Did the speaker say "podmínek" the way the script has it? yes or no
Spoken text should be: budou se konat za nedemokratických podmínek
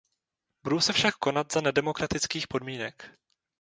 yes